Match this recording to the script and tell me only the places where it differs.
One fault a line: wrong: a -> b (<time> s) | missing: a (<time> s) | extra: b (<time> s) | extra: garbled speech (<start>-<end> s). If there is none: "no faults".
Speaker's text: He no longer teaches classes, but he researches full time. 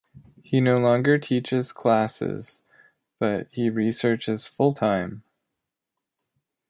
no faults